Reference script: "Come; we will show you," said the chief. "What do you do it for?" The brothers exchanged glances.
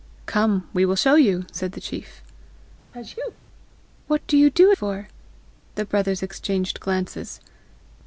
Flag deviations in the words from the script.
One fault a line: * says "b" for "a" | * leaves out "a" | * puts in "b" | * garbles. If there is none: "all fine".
* leaves out "it"